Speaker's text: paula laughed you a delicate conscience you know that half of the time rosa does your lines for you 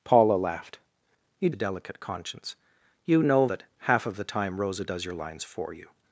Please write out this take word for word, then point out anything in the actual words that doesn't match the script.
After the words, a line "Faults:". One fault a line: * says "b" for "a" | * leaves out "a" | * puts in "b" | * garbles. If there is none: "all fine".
paula laughed you a delicate conscience you know that half of the time rosa does your lines for you
Faults:
all fine